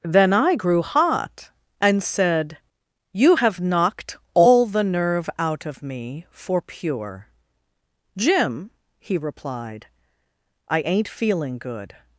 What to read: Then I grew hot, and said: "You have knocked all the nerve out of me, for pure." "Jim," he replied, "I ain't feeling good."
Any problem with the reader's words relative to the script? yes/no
no